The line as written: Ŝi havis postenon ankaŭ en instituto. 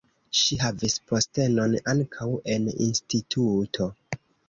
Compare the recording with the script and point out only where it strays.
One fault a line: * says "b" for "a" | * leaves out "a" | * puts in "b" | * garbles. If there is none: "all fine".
all fine